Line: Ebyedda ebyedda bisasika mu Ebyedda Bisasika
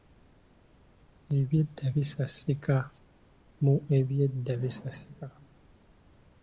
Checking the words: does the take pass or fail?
fail